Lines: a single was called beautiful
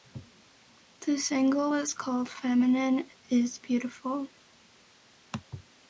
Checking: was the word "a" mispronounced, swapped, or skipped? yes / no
yes